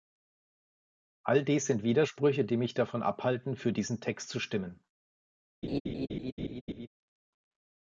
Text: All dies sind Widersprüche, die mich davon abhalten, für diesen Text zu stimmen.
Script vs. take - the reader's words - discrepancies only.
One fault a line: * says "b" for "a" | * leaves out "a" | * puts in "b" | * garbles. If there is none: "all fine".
all fine